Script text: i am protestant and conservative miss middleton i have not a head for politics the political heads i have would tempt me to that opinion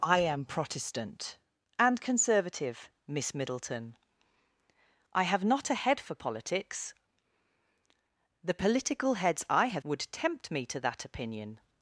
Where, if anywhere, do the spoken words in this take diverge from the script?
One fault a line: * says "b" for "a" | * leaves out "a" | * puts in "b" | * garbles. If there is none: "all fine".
all fine